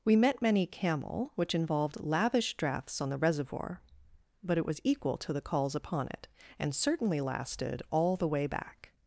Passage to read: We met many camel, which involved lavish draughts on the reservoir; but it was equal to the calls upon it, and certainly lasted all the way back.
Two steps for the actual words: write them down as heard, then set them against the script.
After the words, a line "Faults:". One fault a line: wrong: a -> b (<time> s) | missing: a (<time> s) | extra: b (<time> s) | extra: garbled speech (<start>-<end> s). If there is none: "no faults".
We met many camel, which involved lavish draughts on the reservoir; but it was equal to the calls upon it, and certainly lasted all the way back.
Faults:
no faults